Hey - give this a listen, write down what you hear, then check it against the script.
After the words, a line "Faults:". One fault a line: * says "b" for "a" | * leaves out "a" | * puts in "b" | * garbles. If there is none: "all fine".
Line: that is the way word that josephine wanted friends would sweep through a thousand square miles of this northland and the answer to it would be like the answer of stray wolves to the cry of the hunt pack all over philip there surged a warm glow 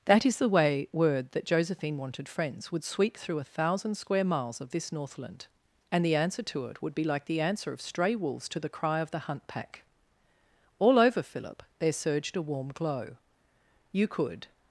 that is the way word that josephine wanted friends would sweep through a thousand square miles of this northland and the answer to it would be like the answer of stray wolves to the cry of the hunt pack all over philip there surged a warm glow you could
Faults:
* puts in "you could"